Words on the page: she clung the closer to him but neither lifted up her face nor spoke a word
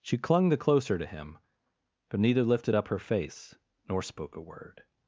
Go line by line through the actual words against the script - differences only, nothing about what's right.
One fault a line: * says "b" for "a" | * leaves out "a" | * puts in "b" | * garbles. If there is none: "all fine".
all fine